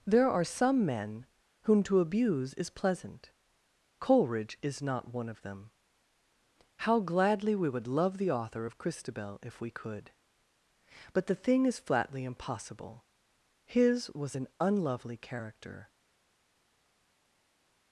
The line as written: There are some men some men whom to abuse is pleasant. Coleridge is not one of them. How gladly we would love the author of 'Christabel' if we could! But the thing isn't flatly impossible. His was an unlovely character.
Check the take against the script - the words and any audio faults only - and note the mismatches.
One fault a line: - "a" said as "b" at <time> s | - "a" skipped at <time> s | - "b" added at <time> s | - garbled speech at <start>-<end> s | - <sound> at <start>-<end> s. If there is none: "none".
- "some men" skipped at 1.3 s
- "isn't" said as "is" at 11.7 s